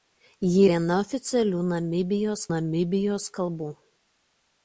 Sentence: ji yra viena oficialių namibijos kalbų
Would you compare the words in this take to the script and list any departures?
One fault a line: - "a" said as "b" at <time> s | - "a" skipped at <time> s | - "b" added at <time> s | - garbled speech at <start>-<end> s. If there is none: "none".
- "yra" skipped at 0.6 s
- "namibijos" added at 2.5 s